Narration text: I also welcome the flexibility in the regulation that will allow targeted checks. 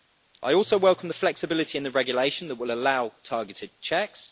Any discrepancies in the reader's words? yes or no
no